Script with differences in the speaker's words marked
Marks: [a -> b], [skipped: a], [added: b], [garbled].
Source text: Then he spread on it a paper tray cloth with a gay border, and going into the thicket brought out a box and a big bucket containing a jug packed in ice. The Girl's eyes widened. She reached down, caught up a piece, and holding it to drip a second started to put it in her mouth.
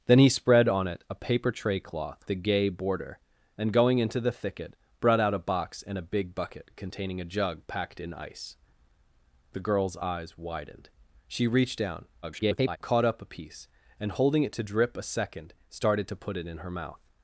Then he spread on it a paper tray cloth [skipped: with] a gay border, and going into the thicket brought out a box and a big bucket containing a jug packed in ice. The Girl's eyes widened. She reached down, [garbled] caught up a piece, and holding it to drip a second started to put it in her mouth.